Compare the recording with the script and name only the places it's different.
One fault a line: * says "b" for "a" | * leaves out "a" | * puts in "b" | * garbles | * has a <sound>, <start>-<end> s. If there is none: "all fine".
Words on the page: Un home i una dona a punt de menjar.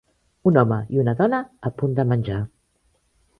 all fine